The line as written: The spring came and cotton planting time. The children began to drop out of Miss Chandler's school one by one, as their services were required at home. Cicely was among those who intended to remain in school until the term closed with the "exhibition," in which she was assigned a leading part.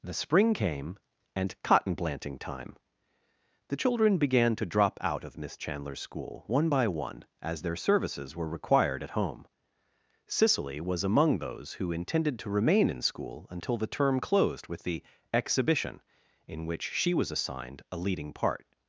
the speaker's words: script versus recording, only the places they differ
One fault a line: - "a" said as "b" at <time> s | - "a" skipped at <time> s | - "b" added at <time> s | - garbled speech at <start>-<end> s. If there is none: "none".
none